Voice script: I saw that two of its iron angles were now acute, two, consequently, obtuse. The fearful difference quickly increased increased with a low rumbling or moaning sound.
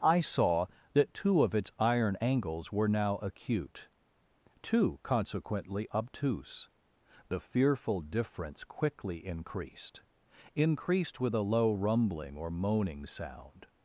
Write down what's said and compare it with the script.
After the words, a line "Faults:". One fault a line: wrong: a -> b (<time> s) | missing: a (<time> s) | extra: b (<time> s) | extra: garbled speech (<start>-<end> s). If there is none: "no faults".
I saw that two of its iron angles were now acute, two, consequently, obtuse. The fearful difference quickly increased increased with a low rumbling or moaning sound.
Faults:
no faults